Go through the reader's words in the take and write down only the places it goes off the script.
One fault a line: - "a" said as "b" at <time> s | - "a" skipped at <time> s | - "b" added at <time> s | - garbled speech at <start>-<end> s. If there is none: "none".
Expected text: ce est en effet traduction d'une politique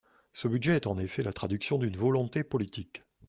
- "budget" added at 0.5 s
- "la" added at 1.2 s
- "volonté" added at 1.9 s